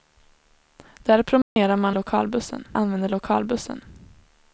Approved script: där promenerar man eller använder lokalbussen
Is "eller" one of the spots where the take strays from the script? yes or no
yes